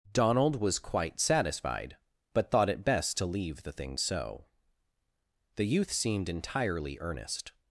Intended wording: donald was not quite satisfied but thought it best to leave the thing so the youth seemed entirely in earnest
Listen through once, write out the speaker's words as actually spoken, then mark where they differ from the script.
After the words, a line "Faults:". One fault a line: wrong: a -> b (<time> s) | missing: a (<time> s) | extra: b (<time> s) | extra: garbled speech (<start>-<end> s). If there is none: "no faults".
donald was quite satisfied but thought it best to leave the thing so the youth seemed entirely earnest
Faults:
missing: not (0.8 s)
missing: in (7.0 s)